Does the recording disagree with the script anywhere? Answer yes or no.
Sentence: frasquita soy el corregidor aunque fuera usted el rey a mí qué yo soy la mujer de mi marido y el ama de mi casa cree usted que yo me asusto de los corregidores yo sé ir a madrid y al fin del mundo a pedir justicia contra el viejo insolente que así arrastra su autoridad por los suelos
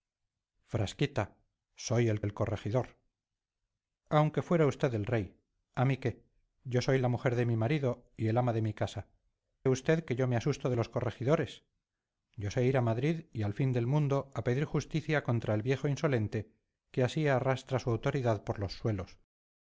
yes